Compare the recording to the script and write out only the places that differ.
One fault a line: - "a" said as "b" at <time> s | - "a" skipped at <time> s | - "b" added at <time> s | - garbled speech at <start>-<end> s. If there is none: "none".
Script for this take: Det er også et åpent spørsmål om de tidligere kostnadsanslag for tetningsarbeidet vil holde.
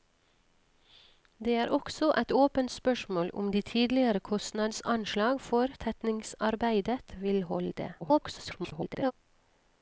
- garbled speech at 8.0-9.1 s